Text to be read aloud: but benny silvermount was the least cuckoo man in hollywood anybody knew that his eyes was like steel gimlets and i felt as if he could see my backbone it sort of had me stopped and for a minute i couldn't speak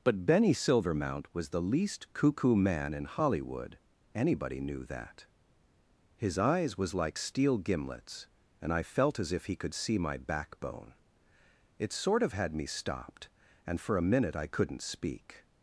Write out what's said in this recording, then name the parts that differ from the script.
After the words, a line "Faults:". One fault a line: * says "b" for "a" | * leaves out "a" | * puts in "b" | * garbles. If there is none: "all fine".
but benny silvermount was the least cuckoo man in hollywood anybody knew that his eyes was like steel gimlets and i felt as if he could see my backbone it sort of had me stopped and for a minute i couldn't speak
Faults:
all fine